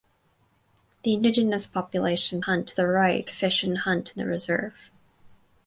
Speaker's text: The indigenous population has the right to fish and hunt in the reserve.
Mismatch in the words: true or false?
true